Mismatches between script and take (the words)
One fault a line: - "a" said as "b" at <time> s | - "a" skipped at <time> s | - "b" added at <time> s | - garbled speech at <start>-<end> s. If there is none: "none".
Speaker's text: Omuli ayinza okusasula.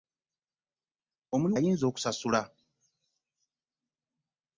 none